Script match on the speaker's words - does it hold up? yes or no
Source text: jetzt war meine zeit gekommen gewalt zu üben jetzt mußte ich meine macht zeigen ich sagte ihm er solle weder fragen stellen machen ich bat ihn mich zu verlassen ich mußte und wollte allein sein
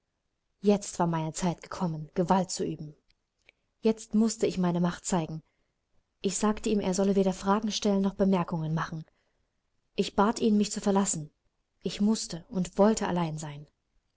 no